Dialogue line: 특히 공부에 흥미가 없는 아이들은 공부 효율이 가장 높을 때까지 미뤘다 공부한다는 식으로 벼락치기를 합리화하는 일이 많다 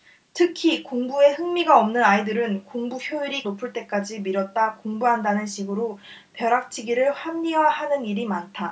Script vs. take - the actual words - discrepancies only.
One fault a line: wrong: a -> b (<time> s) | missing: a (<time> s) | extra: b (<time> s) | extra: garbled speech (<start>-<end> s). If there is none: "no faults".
missing: 가장 (3.4 s)